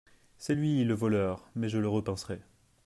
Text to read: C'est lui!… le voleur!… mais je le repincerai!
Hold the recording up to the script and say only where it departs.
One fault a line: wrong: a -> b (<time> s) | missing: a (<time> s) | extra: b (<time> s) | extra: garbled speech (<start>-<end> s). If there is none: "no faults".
no faults